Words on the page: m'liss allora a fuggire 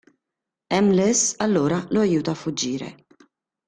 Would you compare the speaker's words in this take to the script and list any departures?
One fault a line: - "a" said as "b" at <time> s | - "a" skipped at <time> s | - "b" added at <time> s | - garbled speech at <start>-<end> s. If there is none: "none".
- "lo aiuta" added at 1.9 s